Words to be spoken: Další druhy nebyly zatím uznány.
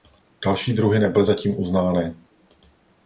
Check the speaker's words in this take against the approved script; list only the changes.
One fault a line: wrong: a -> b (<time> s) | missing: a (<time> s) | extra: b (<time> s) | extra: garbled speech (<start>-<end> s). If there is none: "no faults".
no faults